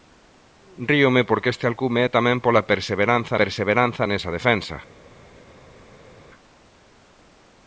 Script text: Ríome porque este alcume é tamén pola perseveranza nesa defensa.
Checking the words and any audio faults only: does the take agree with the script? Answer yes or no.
no